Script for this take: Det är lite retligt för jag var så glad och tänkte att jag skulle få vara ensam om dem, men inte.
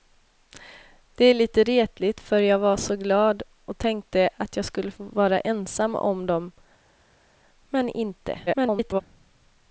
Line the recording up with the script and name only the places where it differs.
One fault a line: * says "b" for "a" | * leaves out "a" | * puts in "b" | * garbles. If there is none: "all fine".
* garbles